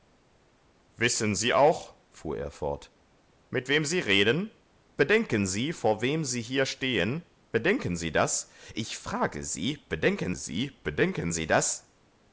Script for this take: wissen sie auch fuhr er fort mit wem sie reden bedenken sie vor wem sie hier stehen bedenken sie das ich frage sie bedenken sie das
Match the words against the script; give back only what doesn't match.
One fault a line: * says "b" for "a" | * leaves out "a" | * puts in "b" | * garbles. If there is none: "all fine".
* puts in "bedenken sie"